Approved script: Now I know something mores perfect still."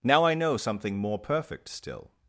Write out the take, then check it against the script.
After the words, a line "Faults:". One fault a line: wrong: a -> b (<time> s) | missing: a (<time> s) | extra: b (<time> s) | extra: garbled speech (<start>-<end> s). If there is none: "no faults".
Now I know something more perfect still."
Faults:
wrong: mores -> more (1.0 s)